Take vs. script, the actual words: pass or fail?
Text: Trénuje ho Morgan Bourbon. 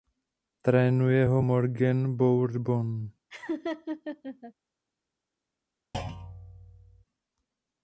pass